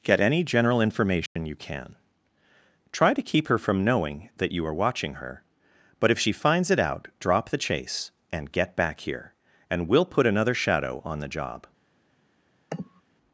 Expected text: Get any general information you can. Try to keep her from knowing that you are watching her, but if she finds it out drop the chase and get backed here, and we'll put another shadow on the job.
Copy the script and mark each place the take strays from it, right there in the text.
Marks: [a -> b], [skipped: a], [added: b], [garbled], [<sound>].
Get any general information [dropout] you can. Try to keep her from knowing that you are watching her, but if she finds it out drop the chase and get [backed -> back] here, and we'll put another shadow on the job. [sniff]